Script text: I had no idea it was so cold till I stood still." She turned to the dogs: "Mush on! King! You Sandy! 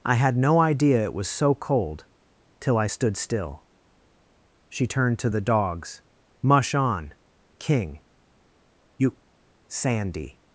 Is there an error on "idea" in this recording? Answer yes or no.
no